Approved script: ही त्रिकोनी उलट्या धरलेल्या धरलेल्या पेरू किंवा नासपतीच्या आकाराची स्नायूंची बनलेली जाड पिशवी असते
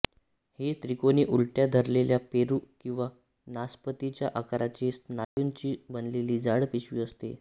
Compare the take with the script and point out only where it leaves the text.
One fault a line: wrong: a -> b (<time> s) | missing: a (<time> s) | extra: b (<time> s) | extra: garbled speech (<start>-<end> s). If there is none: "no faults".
missing: धरलेल्या (2.2 s)